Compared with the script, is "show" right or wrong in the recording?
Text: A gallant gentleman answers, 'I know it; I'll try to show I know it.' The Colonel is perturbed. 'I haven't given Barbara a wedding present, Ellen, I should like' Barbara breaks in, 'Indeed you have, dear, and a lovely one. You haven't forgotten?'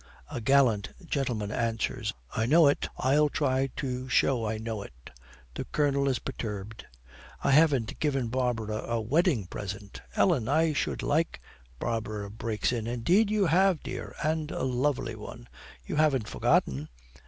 right